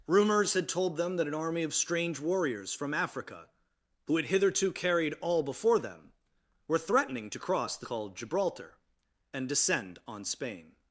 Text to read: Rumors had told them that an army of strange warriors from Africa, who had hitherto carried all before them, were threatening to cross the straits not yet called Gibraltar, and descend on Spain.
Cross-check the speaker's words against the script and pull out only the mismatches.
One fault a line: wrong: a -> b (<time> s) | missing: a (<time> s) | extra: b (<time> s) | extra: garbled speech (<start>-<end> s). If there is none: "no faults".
missing: straits not yet (7.9 s)